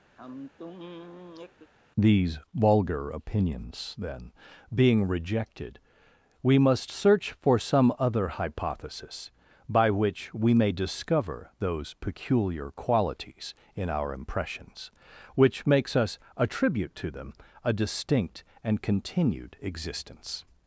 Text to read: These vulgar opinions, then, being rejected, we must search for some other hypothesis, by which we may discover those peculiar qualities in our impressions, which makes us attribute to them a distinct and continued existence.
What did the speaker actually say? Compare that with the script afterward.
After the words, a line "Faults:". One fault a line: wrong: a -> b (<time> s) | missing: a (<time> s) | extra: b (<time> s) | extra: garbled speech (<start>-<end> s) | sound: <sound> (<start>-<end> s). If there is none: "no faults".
These vulgar opinions, then, being rejected, we must search for some other hypothesis, by which we may discover those peculiar qualities in our impressions, which makes us attribute to them a distinct and continued existence.
Faults:
sound: sigh (0.2-1.7 s)